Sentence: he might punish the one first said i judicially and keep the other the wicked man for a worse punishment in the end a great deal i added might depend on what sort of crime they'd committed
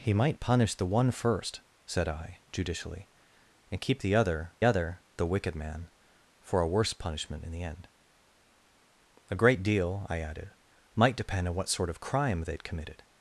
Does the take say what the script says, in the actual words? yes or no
no